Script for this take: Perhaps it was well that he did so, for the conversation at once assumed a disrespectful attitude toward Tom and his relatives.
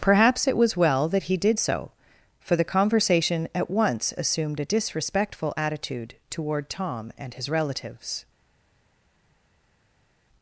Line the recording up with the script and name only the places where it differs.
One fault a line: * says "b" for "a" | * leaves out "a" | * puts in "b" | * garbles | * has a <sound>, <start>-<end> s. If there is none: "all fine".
all fine